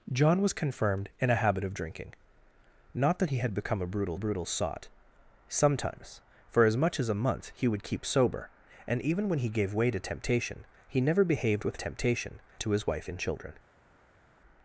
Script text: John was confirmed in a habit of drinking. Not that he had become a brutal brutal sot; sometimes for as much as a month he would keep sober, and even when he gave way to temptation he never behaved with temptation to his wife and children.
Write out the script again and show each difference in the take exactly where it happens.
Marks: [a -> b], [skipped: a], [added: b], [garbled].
John was confirmed in a habit of drinking. Not that he had become a brutal brutal sot; sometimes for as much as a month he would keep sober, and even when he gave way to temptation he never behaved with temptation to his wife and children.